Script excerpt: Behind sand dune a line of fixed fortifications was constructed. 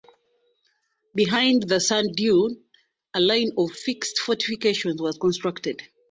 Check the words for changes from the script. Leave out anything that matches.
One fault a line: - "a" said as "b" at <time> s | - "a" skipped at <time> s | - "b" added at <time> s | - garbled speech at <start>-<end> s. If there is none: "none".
- "the" added at 1.6 s